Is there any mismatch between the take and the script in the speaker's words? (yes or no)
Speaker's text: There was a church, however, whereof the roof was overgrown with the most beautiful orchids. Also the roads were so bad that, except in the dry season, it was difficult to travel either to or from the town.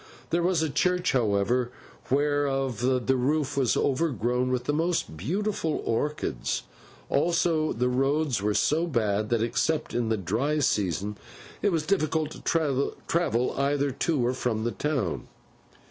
no